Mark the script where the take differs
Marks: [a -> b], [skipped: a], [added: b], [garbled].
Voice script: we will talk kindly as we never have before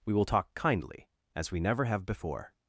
we will talk kindly as we never have before